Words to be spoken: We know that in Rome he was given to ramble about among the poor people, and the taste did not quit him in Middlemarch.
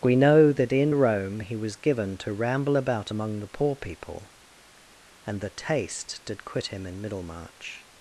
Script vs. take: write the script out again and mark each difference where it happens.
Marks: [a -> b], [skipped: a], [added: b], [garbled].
We know that in Rome he was given to ramble about among the poor people, and the taste did [skipped: not] quit him in Middlemarch.